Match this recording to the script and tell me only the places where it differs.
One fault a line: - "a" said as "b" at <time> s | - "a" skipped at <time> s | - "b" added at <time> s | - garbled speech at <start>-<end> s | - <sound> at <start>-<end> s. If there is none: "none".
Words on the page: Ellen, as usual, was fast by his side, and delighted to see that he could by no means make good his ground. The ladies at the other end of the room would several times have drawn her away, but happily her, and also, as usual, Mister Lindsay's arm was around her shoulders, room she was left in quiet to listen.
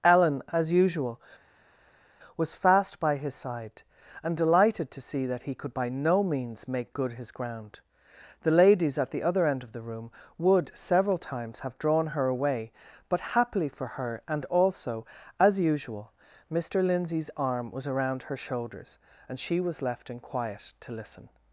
- "for" added at 13.7 s
- "room" said as "and" at 19.3 s